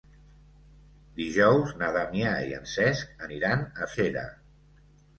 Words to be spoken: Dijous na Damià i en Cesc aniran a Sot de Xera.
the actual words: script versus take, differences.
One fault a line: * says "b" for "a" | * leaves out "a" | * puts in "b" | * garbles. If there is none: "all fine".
* leaves out "Sot de"